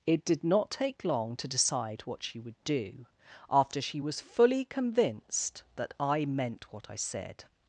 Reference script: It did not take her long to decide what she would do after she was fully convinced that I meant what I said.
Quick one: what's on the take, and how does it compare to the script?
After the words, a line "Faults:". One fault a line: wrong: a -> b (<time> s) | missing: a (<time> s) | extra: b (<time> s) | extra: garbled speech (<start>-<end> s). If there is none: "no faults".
It did not take long to decide what she would do after she was fully convinced that I meant what I said.
Faults:
missing: her (1.0 s)